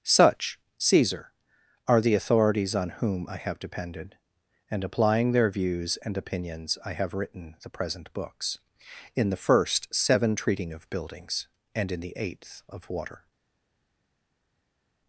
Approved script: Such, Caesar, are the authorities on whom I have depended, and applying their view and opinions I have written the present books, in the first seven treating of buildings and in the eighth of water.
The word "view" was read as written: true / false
false